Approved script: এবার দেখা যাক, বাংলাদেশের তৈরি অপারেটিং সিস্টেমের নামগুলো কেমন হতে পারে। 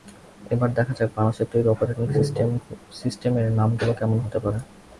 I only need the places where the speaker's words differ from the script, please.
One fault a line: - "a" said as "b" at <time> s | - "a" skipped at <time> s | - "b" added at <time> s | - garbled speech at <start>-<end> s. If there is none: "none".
none